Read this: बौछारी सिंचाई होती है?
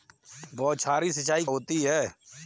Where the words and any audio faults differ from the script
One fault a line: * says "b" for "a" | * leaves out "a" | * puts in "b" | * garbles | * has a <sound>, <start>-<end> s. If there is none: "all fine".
all fine